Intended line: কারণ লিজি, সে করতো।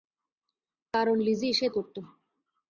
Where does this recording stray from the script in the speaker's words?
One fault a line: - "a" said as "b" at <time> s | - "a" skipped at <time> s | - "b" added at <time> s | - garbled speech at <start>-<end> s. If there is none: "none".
none